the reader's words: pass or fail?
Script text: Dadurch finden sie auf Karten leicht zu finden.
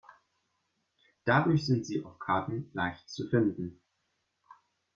fail